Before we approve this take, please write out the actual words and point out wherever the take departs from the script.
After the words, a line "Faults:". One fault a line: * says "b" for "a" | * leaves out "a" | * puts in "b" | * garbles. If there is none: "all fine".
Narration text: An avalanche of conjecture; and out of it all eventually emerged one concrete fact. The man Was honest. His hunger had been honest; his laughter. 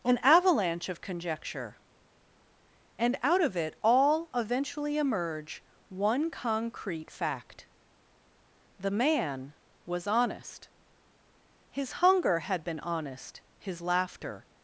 An avalanche of conjecture; and out of it all eventually emerge one concrete fact. The man Was honest. His hunger had been honest; his laughter.
Faults:
* says "emerge" for "emerged"